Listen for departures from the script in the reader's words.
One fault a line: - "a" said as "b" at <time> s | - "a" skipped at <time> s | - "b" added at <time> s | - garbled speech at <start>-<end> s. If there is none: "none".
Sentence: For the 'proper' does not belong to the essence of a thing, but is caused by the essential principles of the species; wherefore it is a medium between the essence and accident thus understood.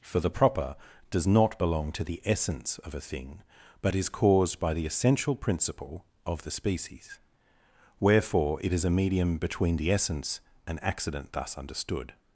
- "principles" said as "principle" at 5.3 s